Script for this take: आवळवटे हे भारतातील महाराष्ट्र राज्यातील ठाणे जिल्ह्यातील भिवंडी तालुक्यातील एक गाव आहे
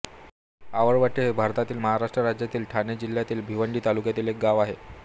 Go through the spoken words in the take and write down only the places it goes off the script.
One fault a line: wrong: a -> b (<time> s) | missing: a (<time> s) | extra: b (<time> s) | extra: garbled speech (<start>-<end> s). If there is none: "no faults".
no faults